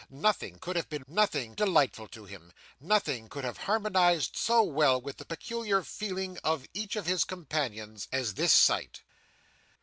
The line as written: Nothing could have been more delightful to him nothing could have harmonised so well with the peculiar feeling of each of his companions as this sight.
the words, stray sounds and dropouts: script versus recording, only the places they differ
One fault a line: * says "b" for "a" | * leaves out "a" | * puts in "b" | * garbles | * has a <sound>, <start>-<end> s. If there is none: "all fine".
* says "nothing" for "more"